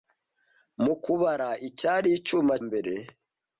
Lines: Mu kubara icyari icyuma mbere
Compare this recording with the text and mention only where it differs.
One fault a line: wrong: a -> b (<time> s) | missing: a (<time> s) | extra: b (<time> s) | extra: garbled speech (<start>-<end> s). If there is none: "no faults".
no faults